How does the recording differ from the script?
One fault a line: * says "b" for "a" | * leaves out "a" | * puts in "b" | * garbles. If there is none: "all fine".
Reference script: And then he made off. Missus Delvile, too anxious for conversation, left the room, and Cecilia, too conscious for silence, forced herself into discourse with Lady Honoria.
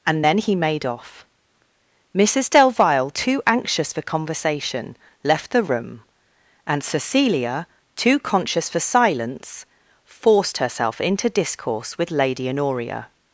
all fine